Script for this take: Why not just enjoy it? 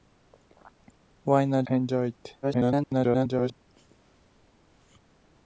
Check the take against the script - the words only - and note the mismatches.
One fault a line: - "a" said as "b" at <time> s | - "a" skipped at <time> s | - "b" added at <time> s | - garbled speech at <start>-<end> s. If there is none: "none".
- "just" skipped at 1.6 s
- garbled speech at 2.4-3.5 s